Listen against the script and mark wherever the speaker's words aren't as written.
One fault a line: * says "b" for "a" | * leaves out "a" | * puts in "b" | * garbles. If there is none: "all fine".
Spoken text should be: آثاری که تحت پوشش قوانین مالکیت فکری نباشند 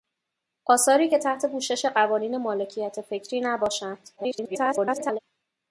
* garbles